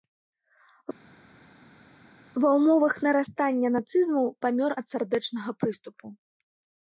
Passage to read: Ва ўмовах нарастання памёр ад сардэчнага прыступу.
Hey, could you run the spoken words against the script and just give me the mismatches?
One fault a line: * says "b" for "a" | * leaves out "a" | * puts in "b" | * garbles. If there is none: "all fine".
* puts in "нацызму"